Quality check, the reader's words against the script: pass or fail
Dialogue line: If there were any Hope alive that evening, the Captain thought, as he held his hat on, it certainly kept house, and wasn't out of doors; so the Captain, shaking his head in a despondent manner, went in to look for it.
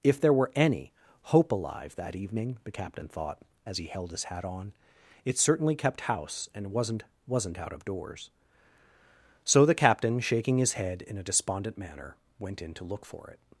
fail